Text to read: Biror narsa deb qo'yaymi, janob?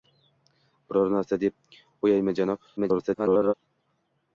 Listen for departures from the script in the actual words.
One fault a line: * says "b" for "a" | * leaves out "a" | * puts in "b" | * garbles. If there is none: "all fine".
* garbles